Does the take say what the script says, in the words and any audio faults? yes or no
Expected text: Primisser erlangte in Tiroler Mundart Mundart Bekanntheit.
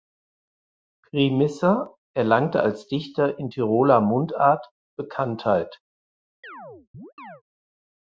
no